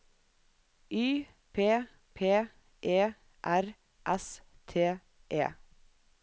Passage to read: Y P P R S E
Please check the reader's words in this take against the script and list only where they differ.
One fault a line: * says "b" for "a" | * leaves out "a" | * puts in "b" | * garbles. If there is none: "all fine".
* puts in "E"
* puts in "T"